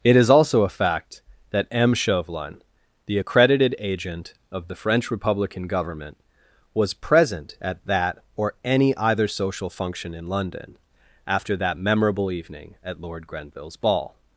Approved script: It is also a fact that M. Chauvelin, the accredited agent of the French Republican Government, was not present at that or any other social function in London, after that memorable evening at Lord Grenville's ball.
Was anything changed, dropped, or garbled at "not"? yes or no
yes